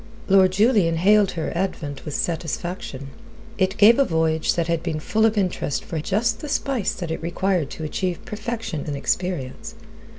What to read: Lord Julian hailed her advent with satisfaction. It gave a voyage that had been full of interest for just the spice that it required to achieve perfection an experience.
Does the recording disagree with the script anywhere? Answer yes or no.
no